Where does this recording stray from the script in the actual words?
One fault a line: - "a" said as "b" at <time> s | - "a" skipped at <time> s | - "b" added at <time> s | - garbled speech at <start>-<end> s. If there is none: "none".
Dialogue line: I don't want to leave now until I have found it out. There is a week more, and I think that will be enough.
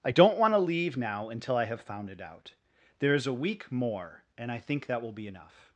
none